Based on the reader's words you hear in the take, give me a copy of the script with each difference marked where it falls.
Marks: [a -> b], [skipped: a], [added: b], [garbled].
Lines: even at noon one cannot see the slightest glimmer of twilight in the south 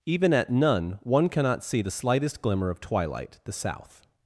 even at [noon -> none] one cannot see the slightest glimmer of twilight [skipped: in] the south